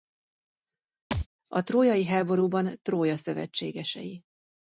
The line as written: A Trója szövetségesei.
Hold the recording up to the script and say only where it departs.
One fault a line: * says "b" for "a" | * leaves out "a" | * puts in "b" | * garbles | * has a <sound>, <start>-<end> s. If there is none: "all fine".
* has a thud, 1.1-1.3 s
* puts in "trójai háborúban"